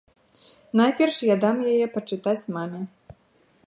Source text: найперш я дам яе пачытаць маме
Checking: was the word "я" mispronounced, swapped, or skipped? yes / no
no